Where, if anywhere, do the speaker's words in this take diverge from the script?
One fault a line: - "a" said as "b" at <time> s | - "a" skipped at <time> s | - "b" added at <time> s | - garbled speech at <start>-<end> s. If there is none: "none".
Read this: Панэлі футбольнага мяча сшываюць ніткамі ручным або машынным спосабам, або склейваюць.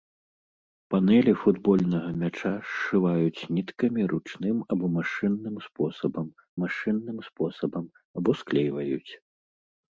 - "машынным спосабам" added at 6.6 s